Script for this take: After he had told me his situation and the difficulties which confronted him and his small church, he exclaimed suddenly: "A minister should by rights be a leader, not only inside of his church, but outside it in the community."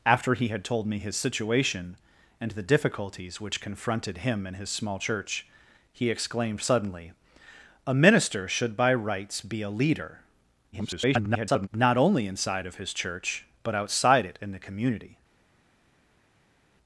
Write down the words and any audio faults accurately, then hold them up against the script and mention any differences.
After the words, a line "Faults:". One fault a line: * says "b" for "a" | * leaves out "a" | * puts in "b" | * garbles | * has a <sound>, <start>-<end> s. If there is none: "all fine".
After he had told me his situation and the difficulties which confronted him and his small church, he exclaimed suddenly: "A minister should by rights be a leader, [garbled] not only inside of his church, but outside it in the community."
Faults:
* garbles